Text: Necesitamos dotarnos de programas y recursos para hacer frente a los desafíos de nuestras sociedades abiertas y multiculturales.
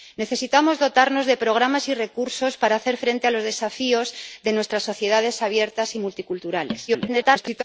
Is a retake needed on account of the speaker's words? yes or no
yes